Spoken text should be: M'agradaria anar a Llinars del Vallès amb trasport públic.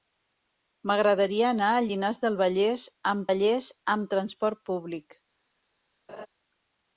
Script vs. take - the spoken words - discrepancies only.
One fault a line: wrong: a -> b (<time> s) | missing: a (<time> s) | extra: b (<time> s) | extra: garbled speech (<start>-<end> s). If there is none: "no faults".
extra: Vallès amb (3.3 s)